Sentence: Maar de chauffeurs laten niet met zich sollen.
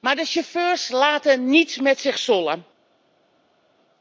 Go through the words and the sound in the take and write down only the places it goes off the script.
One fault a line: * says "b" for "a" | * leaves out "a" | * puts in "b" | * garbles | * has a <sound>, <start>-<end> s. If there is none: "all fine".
all fine